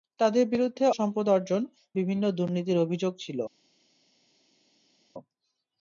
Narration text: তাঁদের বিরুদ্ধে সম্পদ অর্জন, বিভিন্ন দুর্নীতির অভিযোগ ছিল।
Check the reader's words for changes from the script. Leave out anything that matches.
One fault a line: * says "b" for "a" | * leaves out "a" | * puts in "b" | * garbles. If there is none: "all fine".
all fine